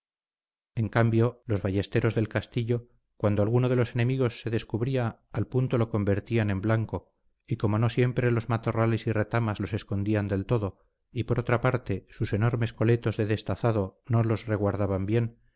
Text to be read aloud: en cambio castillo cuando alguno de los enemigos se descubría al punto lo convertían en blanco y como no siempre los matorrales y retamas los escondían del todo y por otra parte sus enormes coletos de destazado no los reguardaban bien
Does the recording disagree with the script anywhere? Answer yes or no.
yes